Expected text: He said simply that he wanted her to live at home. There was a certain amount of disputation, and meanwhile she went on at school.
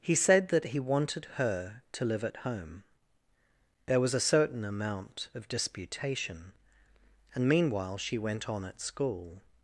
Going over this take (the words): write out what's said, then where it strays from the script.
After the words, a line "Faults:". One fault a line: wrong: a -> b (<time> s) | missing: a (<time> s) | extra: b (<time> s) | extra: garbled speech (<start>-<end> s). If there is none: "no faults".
He said that he wanted her to live at home. There was a certain amount of disputation, and meanwhile she went on at school.
Faults:
missing: simply (0.5 s)